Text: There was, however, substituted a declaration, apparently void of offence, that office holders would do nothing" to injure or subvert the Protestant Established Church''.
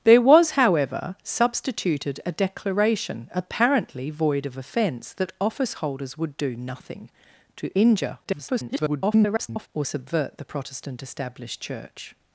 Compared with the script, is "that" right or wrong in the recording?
right